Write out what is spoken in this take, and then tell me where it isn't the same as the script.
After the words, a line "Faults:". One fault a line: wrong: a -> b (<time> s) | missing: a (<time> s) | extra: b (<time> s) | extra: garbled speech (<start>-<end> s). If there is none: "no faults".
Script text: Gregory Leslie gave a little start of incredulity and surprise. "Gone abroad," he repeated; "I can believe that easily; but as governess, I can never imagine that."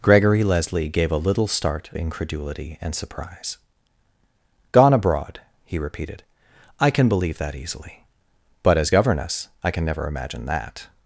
Gregory Leslie gave a little start incredulity and surprise. "Gone abroad," he repeated; "I can believe that easily; but as governess, I can never imagine that."
Faults:
missing: of (1.9 s)